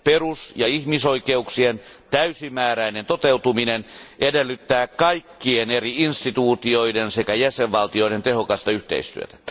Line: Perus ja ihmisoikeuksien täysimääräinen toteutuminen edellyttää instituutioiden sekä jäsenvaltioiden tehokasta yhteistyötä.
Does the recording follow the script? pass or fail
fail